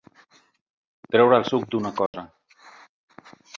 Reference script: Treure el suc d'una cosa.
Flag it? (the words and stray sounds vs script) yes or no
yes